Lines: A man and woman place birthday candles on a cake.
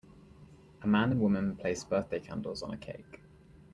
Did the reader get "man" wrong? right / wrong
right